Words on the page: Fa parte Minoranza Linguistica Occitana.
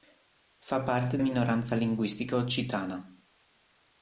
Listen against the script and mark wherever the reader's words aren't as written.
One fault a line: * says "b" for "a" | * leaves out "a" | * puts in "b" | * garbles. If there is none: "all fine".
all fine